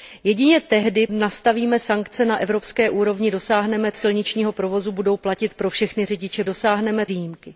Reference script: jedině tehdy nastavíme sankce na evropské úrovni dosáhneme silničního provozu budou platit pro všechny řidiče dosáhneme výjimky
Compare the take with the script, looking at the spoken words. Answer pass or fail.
pass